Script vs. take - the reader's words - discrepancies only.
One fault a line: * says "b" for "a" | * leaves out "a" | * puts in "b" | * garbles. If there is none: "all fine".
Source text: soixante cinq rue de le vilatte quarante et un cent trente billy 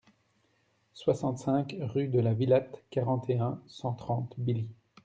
* says "la" for "le"